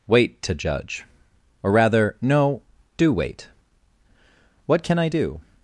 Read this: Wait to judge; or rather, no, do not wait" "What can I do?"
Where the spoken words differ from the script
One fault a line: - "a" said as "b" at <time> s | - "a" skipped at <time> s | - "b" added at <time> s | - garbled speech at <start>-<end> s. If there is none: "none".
- "not" skipped at 3.1 s